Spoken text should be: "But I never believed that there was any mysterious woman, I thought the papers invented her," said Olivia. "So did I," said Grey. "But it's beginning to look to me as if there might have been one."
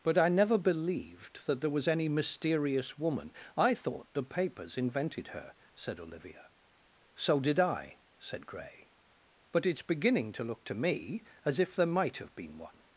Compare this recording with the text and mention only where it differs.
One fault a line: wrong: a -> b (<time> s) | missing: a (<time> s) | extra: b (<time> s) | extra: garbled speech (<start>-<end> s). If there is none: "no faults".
no faults